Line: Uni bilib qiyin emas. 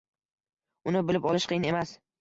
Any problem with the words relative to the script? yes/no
yes